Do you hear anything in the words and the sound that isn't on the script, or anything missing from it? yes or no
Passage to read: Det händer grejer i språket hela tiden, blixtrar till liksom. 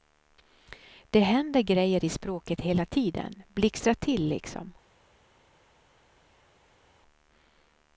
no